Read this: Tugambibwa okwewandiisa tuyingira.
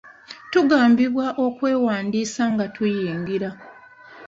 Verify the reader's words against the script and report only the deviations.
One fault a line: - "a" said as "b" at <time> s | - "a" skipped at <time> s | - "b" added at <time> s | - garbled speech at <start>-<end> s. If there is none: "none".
- "nga" added at 2.5 s